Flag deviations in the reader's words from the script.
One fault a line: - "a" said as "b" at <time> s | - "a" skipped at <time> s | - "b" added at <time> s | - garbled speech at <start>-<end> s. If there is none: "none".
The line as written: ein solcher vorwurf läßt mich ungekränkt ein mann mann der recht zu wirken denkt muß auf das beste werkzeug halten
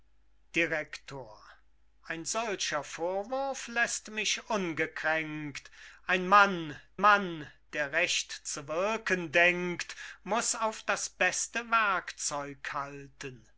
none